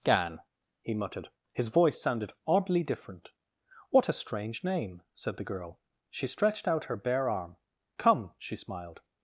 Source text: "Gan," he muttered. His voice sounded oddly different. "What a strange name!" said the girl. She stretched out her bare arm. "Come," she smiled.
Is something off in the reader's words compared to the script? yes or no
no